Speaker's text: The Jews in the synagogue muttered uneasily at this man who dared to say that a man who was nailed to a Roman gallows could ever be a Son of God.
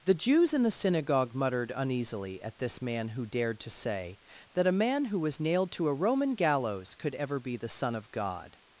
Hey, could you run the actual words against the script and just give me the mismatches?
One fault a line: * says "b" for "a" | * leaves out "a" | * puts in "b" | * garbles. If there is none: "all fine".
* says "the" for "a"